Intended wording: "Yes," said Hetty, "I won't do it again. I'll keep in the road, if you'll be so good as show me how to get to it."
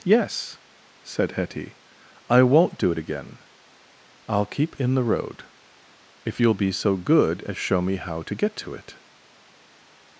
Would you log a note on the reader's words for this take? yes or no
no